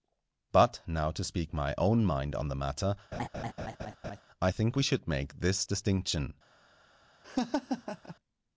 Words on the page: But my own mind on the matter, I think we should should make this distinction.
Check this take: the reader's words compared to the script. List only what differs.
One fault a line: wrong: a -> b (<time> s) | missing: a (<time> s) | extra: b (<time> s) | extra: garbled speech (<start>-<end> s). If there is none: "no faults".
extra: now to speak (0.9 s)
missing: should (5.1 s)